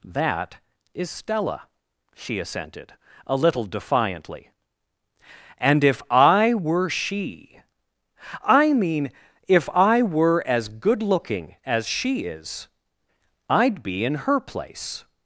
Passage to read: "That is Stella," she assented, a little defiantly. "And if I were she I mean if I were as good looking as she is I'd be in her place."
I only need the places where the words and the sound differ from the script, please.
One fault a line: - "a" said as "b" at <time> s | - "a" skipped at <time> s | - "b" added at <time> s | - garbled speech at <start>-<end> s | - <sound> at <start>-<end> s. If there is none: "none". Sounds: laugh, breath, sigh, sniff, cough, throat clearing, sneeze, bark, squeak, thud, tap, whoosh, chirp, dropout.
none